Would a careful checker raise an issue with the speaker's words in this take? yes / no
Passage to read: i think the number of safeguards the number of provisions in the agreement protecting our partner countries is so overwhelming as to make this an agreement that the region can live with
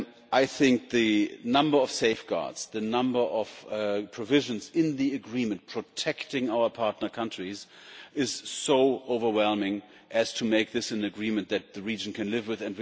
no